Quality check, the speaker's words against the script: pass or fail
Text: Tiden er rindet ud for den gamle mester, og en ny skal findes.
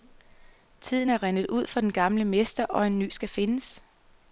pass